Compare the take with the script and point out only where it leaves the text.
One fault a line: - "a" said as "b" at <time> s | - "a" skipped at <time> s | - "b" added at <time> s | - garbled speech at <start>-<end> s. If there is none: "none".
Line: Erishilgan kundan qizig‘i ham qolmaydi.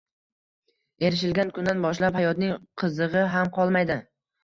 - "boshlab hayotning" added at 1.9 s